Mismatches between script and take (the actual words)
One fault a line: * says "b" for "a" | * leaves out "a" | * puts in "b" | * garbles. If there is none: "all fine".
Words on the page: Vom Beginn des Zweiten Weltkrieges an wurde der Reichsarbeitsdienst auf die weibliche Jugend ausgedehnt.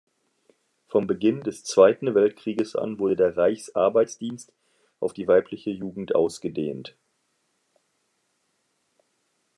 all fine